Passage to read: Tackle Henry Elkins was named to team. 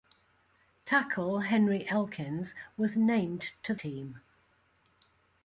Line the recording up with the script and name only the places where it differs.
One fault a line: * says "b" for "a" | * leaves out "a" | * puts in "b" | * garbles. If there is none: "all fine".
all fine